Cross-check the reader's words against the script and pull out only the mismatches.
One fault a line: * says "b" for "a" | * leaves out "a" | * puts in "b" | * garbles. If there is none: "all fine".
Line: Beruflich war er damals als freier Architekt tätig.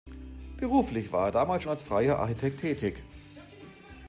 all fine